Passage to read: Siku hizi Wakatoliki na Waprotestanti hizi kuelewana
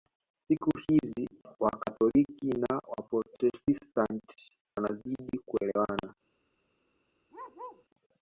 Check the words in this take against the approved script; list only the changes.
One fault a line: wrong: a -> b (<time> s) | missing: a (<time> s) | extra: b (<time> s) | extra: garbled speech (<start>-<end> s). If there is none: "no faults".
wrong: hizi -> wanazidi (4.8 s)